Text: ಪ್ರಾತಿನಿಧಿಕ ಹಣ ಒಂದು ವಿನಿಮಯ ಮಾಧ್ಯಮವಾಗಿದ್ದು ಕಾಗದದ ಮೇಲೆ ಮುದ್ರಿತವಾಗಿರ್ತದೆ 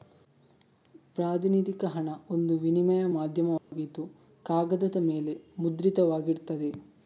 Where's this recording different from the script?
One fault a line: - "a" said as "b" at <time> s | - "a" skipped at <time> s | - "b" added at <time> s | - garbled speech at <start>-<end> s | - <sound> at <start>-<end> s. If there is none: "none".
- dropout at 3.6-3.7 s